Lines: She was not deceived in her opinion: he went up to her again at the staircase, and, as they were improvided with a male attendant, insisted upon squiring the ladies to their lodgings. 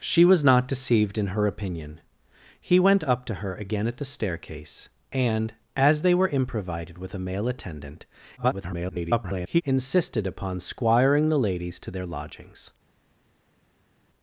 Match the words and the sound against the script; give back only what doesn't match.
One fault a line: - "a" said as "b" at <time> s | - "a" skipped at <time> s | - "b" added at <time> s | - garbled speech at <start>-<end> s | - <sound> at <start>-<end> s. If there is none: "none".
- garbled speech at 8.4-9.6 s